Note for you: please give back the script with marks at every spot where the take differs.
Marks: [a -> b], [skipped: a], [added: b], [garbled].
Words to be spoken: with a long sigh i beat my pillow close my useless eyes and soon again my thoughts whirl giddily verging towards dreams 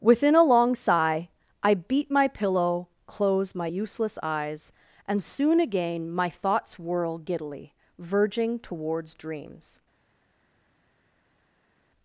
[with -> within] a long sigh i beat my pillow close my useless eyes and soon again my thoughts whirl giddily verging towards dreams